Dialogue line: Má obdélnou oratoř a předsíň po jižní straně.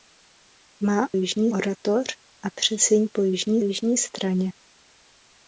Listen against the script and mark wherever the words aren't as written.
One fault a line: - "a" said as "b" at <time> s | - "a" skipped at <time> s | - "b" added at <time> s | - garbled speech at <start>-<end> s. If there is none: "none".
- "obdélnou" said as "jižní" at 1.1 s
- "jižní" added at 3.6 s